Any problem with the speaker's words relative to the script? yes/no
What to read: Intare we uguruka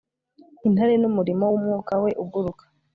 yes